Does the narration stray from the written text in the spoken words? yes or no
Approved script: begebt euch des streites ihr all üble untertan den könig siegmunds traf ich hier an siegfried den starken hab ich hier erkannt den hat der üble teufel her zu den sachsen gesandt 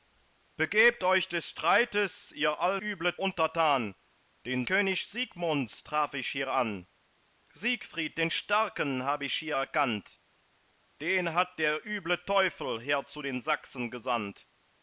no